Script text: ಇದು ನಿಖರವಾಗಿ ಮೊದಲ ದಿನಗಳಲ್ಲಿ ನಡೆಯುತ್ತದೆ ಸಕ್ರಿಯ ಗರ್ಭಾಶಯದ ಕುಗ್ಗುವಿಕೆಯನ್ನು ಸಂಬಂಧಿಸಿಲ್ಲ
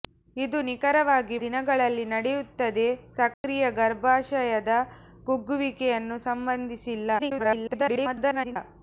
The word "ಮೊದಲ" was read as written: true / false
false